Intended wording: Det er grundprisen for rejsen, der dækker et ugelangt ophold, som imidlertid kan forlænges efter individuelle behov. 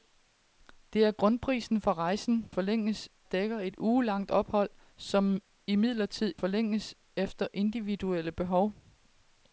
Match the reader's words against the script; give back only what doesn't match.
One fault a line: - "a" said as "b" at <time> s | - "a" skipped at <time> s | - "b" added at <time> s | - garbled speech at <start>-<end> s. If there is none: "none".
- "der" said as "forlænges" at 2.5 s
- "kan" skipped at 6.3 s